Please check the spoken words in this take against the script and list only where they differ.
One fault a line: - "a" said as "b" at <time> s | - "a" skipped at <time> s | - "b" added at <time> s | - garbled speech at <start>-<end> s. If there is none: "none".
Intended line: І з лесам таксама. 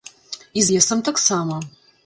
- "з" skipped at 0.6 s